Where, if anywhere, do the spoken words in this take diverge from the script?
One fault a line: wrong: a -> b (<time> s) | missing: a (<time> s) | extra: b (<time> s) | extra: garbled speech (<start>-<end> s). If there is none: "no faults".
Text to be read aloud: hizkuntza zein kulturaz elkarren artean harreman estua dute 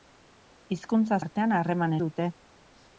missing: zein kulturaz elkarren (1.2 s)
missing: estua (2.0 s)